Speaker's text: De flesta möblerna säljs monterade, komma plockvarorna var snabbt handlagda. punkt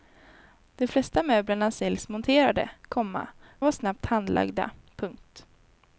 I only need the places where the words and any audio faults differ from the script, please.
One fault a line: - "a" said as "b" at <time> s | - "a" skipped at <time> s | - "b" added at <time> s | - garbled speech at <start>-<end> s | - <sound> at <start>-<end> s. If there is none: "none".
- "plockvarorna" skipped at 3.3 s